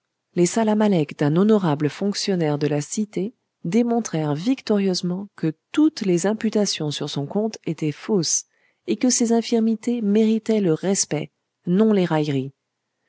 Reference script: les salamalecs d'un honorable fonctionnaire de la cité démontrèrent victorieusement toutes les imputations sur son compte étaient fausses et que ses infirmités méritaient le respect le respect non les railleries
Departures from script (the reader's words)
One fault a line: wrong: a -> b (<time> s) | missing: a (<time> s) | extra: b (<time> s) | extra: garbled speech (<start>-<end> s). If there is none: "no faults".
extra: que (5.3 s)
missing: le respect (11.3 s)